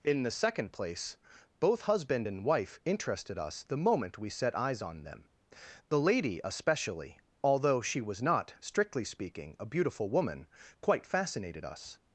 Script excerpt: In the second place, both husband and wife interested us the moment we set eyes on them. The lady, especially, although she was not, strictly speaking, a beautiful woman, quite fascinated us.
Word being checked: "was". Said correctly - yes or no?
yes